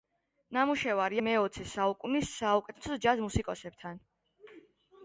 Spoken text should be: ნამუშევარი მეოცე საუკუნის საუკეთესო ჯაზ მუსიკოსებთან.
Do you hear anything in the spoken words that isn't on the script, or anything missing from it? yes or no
no